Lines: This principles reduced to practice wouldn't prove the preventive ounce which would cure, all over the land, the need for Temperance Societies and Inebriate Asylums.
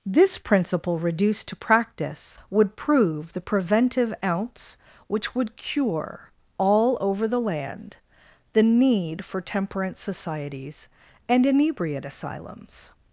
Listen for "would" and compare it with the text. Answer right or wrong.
right